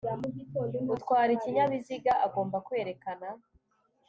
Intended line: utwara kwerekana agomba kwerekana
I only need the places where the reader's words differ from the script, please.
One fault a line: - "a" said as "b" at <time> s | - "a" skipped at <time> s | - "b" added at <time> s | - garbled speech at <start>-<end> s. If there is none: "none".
- "kwerekana" said as "ikinyabiziga" at 1.4 s